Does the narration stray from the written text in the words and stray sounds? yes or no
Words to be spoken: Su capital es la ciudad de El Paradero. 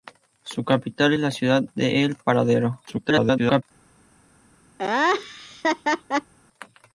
yes